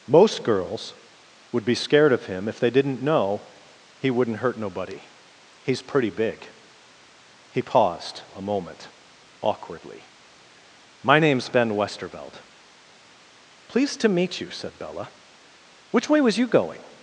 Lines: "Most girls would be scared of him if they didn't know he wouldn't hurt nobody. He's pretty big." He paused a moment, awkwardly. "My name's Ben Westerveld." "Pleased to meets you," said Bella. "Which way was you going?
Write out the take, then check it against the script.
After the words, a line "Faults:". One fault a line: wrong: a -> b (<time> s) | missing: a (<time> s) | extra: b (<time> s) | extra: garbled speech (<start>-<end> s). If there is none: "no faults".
"Most girls would be scared of him if they didn't know he wouldn't hurt nobody. He's pretty big." He paused a moment, awkwardly. "My name's Ben Westerveld." "Pleased to meet you," said Bella. "Which way was you going?
Faults:
wrong: meets -> meet (14.1 s)